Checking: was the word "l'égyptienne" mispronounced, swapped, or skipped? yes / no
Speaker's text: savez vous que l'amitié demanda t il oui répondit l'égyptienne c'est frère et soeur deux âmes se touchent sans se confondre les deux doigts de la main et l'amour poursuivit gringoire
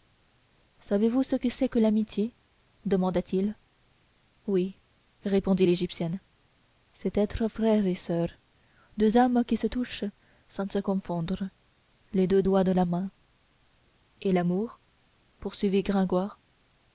no